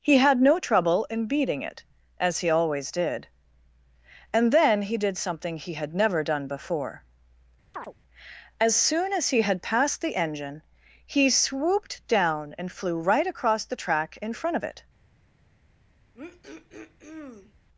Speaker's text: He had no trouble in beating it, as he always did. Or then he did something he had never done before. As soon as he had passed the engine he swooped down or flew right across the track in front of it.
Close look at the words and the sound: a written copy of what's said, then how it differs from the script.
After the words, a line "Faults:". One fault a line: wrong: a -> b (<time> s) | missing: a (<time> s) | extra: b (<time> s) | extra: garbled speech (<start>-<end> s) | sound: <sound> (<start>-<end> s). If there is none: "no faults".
He had no trouble in beating it, as he always did. And then he did something he had never done before. As soon as he had passed the engine he swooped down and flew right across the track in front of it.
Faults:
wrong: Or -> And (4.3 s)
sound: chirp (7.7-7.9 s)
wrong: or -> and (12.6 s)
sound: throat clearing (16.1-17.5 s)